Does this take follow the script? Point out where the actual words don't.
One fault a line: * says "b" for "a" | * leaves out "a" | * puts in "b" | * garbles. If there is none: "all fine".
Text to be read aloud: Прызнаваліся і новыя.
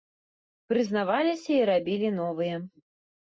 * puts in "рабілі"